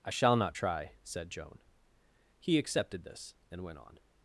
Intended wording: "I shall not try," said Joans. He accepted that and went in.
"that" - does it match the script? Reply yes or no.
no